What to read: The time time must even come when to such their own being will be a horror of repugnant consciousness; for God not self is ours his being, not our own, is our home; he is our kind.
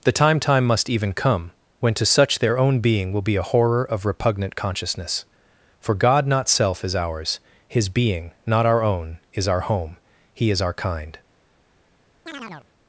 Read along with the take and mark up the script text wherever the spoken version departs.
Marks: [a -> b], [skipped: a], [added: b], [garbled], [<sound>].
The time time must even come when to such their own being will be a horror of repugnant consciousness; for God not self is ours his being, not our own, is our home; he is our kind. [chirp]